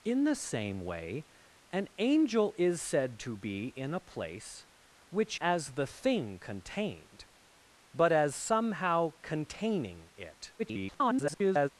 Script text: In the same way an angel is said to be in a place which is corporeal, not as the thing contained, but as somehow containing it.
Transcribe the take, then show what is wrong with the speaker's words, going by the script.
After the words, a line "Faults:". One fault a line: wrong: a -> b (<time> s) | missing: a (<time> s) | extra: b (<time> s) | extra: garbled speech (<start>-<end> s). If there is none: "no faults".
In the same way an angel is said to be in a place which as the thing contained, but as somehow containing it. [garbled]
Faults:
missing: is corporeal not (5.4 s)
extra: garbled speech (10.6-11.7 s)